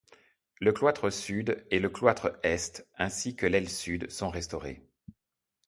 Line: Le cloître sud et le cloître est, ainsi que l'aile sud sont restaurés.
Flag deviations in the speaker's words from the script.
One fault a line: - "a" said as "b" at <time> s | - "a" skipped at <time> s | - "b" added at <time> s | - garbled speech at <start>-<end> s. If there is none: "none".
none